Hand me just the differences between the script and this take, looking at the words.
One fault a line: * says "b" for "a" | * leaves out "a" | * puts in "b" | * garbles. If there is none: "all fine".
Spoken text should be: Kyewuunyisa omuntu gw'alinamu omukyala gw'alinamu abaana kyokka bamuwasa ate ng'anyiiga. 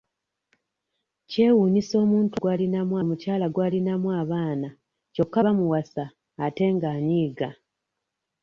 all fine